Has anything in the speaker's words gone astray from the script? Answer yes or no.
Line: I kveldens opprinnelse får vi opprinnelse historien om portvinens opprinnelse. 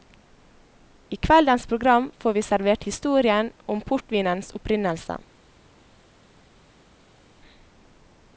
yes